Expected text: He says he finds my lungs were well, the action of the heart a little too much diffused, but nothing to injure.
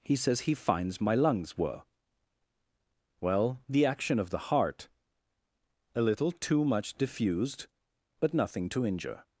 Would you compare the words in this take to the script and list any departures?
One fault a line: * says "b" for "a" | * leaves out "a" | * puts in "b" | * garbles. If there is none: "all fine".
all fine